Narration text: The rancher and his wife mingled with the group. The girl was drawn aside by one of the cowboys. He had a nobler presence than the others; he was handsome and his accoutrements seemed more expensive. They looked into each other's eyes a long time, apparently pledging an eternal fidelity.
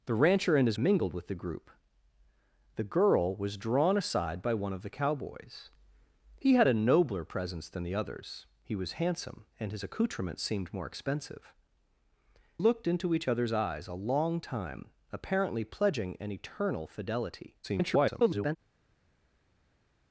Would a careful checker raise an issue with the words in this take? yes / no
yes